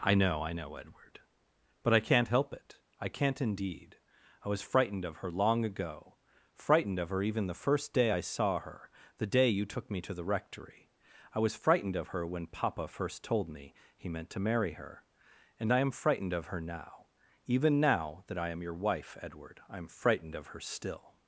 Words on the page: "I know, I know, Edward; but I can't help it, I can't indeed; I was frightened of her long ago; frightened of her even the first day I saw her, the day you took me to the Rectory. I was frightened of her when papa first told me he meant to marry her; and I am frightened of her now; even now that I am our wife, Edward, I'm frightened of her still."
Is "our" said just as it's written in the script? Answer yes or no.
no